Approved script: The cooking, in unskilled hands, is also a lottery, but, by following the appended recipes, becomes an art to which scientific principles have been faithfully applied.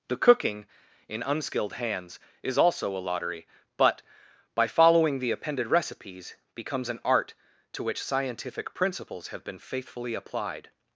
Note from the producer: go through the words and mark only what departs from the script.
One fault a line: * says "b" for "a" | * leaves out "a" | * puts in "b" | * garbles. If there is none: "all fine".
all fine